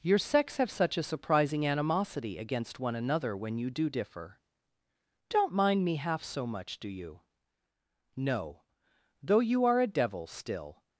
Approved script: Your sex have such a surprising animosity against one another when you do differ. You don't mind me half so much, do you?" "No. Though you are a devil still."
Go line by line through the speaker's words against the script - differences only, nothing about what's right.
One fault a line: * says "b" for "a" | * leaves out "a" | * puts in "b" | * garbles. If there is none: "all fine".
* leaves out "You"